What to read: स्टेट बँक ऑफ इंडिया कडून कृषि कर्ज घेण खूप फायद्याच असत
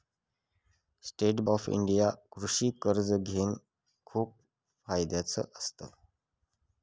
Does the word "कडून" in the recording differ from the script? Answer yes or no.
yes